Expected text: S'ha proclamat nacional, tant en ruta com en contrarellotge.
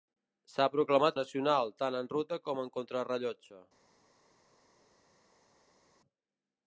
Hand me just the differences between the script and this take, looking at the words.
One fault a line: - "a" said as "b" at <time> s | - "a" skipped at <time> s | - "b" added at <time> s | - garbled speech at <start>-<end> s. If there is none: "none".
none